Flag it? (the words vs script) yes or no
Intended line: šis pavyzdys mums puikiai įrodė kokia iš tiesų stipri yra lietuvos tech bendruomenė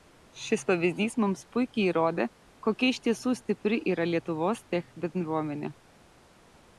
no